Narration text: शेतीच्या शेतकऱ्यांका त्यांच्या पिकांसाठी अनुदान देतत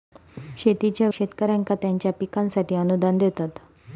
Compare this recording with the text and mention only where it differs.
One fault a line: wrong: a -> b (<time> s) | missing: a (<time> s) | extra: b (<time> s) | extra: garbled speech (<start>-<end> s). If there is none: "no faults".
no faults